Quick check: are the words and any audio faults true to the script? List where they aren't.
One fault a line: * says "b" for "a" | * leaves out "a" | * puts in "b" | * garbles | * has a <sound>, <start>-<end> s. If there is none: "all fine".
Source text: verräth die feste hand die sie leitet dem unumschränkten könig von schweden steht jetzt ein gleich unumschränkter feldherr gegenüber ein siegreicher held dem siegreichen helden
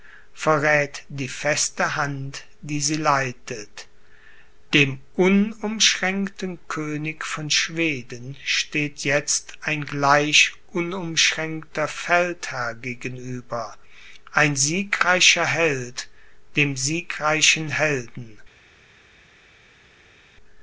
all fine